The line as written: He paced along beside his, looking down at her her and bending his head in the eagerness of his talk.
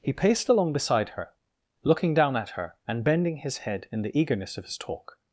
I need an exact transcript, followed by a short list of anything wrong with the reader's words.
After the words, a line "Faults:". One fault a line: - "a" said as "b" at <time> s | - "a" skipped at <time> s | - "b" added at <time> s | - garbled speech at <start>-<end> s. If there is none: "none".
He paced along beside her, looking down at her and bending his head in the eagerness of his talk.
Faults:
- "his" said as "her" at 1.1 s
- "her" skipped at 2.8 s